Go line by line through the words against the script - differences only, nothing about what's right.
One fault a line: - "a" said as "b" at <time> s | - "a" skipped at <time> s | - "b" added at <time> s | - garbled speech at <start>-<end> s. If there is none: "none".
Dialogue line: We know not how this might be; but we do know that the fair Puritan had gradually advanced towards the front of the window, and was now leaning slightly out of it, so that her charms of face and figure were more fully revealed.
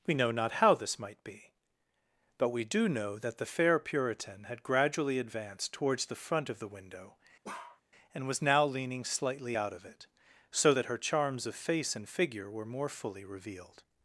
none